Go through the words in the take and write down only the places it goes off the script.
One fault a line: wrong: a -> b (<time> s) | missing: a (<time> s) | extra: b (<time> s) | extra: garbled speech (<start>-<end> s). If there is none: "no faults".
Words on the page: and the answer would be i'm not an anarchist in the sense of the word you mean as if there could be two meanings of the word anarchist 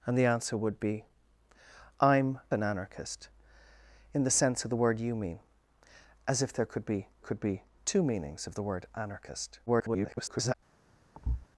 missing: not (2.4 s)
extra: could be (7.2 s)
extra: garbled speech (9.7-10.5 s)